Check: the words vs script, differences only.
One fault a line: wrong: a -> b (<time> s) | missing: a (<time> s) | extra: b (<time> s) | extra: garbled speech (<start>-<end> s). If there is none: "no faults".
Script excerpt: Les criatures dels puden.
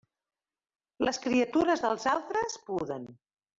extra: altres (2.1 s)